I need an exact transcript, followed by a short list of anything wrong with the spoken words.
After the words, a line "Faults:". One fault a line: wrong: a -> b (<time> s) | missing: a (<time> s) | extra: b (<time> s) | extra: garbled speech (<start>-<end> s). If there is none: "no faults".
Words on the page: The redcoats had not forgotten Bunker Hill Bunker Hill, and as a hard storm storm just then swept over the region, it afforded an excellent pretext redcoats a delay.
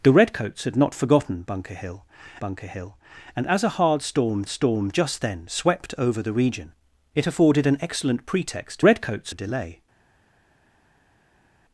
The redcoats had not forgotten Bunker Hill Bunker Hill, and as a hard storm storm just then swept over the region, it afforded an excellent pretext redcoats a delay.
Faults:
no faults